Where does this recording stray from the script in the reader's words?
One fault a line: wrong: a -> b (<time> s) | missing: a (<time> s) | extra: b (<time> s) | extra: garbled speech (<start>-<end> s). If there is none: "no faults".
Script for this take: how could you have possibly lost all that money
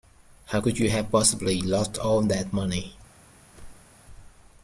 no faults